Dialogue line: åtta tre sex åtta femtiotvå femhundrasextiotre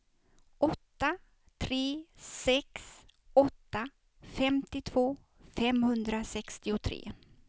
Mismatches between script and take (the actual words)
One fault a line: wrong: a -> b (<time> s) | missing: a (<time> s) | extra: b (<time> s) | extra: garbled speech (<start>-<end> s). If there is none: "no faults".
no faults